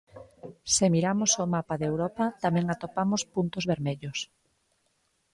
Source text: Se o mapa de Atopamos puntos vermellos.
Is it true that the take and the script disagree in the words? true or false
true